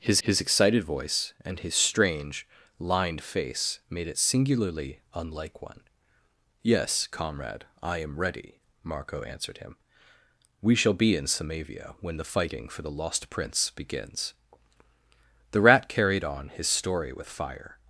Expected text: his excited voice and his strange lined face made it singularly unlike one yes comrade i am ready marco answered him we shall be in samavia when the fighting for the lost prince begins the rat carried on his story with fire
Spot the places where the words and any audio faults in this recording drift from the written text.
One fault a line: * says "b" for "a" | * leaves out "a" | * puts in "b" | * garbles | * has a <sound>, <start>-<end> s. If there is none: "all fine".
* puts in "his"